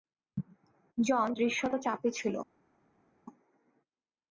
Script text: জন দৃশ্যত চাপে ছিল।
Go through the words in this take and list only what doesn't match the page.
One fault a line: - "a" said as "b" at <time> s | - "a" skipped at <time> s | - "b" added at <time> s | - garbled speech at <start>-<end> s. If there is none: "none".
none